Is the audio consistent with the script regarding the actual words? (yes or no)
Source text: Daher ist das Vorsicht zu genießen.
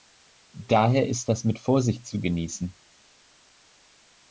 no